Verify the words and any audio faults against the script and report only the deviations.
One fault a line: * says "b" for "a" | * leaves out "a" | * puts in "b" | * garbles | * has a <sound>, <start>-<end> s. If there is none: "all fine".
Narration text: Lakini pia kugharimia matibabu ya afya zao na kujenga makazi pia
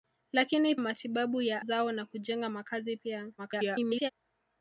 * leaves out "pia kugharimia"
* leaves out "afya"
* garbles